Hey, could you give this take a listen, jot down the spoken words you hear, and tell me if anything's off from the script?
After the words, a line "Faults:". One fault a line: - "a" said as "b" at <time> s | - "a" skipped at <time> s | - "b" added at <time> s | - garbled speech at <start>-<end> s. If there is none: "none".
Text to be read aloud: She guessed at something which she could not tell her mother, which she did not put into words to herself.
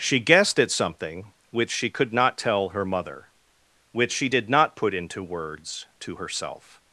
She guessed at something which she could not tell her mother, which she did not put into words to herself.
Faults:
none